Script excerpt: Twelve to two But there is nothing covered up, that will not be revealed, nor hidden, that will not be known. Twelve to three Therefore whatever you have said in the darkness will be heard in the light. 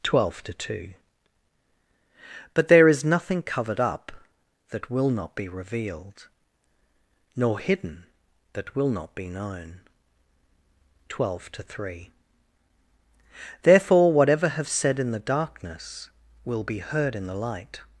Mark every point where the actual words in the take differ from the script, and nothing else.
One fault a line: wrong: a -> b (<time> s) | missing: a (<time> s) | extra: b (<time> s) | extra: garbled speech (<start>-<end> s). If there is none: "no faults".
missing: you (14.5 s)